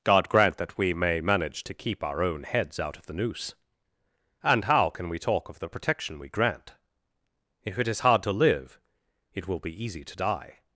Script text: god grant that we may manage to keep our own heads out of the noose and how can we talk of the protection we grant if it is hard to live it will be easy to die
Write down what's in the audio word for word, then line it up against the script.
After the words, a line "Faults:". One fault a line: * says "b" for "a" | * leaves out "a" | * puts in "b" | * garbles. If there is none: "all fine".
god grant that we may manage to keep our own heads out of the noose and how can we talk of the protection we grant if it is hard to live it will be easy to die
Faults:
all fine